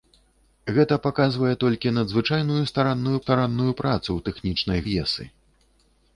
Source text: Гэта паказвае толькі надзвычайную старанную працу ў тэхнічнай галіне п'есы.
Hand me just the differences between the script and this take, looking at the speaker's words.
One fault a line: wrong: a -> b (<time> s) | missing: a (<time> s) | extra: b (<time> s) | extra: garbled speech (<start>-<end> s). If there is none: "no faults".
extra: старанную (3.2 s)
missing: галіне (4.8 s)